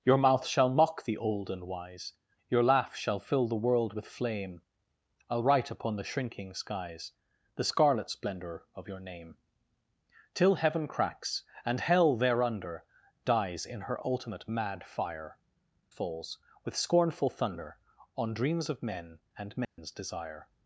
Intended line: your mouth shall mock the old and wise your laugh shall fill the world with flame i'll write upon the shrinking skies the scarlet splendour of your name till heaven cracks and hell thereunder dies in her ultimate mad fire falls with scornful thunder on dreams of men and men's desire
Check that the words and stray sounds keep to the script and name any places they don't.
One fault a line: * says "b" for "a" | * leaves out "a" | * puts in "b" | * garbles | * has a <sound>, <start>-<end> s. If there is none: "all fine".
* has a dropout, 19.6-19.8 s